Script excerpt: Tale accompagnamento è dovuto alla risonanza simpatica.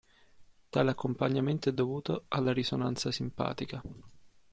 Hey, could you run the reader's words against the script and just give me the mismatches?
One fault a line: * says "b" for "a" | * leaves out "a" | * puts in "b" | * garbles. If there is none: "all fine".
all fine